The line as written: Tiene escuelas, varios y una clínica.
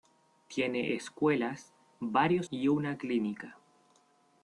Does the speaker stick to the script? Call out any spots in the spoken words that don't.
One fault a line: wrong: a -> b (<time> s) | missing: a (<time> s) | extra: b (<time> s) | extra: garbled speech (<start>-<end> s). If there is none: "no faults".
no faults